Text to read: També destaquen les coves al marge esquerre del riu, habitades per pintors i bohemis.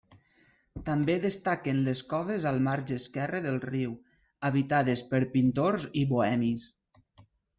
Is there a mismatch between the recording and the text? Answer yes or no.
no